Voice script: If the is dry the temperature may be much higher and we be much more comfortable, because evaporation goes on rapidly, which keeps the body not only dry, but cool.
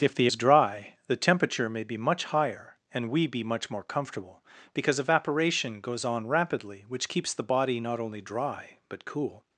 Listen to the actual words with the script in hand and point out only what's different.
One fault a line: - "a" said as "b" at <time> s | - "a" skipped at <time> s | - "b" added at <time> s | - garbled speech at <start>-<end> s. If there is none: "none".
none